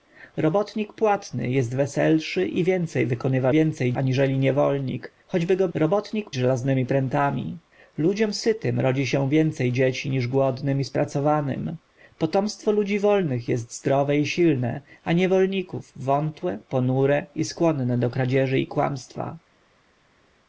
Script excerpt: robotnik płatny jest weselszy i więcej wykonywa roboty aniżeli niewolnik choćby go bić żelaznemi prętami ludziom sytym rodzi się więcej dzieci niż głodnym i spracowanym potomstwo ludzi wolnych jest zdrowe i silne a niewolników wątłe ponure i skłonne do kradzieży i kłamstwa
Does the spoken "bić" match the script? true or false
false